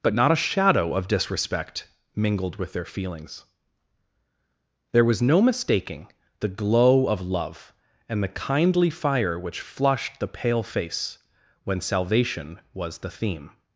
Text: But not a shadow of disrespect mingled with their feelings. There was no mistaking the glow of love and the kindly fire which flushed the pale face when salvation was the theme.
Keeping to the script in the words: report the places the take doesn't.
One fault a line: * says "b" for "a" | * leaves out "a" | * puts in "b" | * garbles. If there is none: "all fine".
all fine